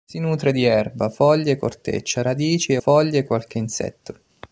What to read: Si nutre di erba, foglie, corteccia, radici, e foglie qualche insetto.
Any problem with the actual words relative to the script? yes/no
no